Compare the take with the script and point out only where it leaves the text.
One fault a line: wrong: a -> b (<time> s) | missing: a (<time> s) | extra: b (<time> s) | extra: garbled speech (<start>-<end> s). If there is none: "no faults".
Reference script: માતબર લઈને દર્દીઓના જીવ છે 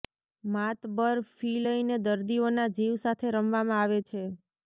extra: ફી (1.3 s)
extra: સાથે રમવામાં આવે (3.0 s)